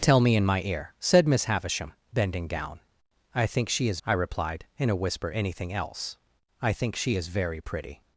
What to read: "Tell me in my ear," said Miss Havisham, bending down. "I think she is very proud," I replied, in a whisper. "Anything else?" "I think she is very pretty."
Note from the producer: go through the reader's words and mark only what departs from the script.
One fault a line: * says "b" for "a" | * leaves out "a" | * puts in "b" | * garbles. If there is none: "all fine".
* leaves out "very proud"